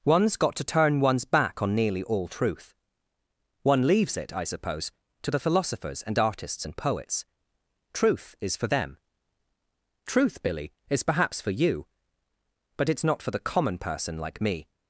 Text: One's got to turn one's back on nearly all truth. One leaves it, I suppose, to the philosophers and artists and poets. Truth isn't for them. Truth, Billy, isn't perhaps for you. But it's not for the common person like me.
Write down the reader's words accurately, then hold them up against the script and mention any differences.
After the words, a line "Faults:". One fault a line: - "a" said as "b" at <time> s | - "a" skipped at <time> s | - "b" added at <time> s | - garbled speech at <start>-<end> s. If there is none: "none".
One's got to turn one's back on nearly all truth. One leaves it, I suppose, to the philosophers and artists and poets. Truth is for them. Truth, Billy, is perhaps for you. But it's not for the common person like me.
Faults:
- "isn't" said as "is" at 8.4 s
- "isn't" said as "is" at 10.9 s